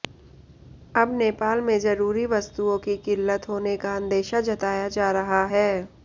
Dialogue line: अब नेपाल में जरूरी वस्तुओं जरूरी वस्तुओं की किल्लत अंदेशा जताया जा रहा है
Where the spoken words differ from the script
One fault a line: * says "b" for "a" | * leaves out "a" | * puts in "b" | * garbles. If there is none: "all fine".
* says "की किल्लत होने का" for "जरूरी वस्तुओं की किल्लत"